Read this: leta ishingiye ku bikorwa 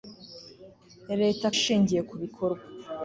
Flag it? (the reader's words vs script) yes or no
no